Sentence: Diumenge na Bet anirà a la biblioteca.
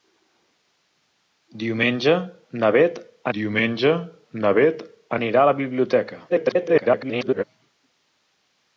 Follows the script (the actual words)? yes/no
no